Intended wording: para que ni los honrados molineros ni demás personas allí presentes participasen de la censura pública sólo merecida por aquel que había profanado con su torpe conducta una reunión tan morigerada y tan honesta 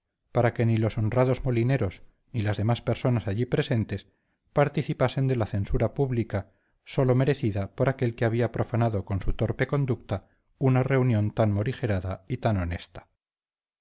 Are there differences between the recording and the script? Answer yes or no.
yes